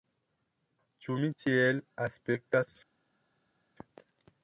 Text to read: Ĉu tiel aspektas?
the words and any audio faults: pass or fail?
fail